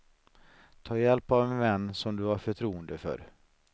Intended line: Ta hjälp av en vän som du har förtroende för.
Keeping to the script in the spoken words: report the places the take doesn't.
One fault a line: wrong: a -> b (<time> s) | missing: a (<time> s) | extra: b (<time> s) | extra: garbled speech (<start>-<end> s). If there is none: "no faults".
no faults